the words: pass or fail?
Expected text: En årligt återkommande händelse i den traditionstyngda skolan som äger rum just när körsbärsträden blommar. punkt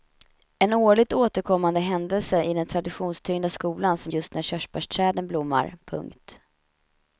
fail